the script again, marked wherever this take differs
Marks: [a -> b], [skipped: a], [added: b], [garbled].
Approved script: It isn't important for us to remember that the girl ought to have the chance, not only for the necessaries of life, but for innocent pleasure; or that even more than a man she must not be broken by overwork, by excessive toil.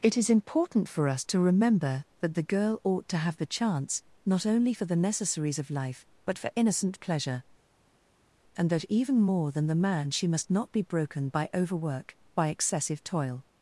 It [isn't -> is] important for us to remember that the girl ought to have the chance, not only for the necessaries of life, but for innocent pleasure; [or -> and] that even more than [a -> the] man she must not be broken by overwork, by excessive toil.